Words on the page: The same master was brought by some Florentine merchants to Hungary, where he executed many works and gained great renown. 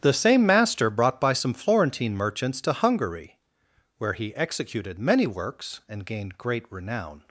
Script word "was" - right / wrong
wrong